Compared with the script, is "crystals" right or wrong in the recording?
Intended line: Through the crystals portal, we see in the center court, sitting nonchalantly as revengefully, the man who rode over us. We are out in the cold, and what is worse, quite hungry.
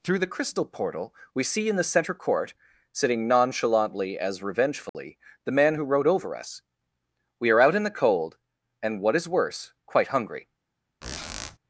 wrong